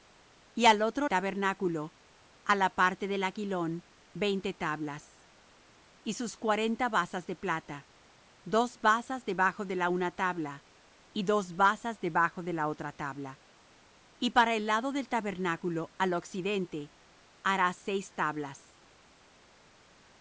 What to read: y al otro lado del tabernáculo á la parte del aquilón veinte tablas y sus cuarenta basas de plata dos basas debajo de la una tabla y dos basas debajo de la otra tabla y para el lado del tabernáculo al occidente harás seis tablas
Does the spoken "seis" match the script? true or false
true